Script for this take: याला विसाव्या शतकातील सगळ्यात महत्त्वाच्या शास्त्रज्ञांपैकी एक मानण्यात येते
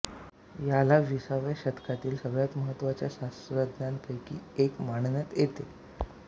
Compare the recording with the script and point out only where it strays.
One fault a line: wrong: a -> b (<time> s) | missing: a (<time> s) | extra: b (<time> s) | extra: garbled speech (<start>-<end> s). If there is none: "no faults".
no faults